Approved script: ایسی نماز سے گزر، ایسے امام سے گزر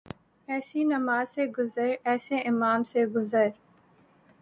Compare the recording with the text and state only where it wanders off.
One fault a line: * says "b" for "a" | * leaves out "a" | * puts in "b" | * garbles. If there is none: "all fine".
all fine